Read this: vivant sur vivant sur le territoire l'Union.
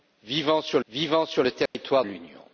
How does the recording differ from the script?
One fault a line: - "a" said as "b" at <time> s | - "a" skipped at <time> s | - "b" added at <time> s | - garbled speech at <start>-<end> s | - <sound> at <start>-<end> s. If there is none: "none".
- dropout at 1.7-1.7 s